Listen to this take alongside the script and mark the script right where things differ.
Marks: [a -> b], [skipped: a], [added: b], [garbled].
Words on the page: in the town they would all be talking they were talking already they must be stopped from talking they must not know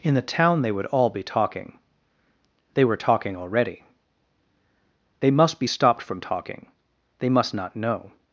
in the town they would all be talking they were talking already they must be stopped from talking they must not know